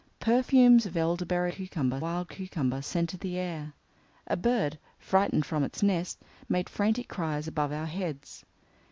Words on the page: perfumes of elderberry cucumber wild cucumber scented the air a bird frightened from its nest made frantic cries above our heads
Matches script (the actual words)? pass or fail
pass